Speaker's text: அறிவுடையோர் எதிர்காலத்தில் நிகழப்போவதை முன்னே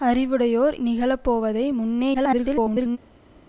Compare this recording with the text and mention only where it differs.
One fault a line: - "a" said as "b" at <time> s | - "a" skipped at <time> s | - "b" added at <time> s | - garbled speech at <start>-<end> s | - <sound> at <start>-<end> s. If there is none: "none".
- "எதிர்காலத்தில்" skipped at 0.8 s
- garbled speech at 2.1-3.0 s